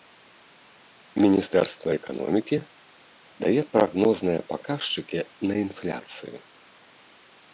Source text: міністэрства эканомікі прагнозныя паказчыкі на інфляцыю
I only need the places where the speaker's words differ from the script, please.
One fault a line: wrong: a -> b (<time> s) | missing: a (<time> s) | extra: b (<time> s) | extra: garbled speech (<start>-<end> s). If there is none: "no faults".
extra: дае (3.4 s)